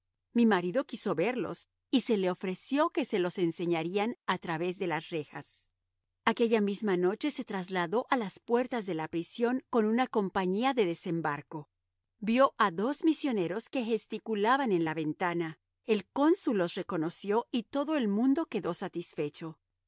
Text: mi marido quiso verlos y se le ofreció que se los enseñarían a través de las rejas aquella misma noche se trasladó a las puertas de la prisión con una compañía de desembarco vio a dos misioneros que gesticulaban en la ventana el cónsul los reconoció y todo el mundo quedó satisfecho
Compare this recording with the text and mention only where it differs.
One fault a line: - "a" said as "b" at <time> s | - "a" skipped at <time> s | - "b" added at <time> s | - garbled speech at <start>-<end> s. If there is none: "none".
none